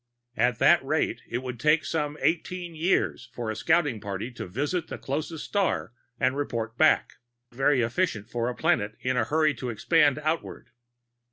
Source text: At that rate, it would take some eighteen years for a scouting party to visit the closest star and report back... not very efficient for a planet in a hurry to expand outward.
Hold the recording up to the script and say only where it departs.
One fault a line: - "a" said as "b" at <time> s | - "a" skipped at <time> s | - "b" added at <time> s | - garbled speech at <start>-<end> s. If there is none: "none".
- "not" skipped at 7.1 s